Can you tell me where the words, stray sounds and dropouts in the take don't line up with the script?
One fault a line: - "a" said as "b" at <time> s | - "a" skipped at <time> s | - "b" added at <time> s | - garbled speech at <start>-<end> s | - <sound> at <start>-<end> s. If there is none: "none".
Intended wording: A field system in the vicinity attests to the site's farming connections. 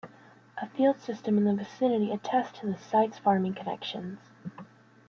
none